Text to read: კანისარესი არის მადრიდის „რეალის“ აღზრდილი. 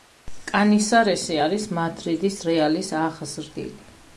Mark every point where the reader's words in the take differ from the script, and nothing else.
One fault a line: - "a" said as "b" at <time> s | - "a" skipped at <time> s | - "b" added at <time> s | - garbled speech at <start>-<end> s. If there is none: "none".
none